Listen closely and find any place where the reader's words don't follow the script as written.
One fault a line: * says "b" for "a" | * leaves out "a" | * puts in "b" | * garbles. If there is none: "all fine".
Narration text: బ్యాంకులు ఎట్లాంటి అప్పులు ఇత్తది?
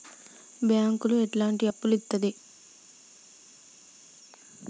all fine